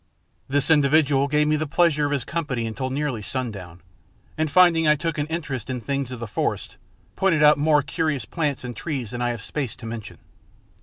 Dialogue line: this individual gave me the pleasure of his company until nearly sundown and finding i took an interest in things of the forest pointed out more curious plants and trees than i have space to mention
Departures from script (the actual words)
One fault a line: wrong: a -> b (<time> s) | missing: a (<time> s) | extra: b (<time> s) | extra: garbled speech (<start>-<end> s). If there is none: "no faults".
no faults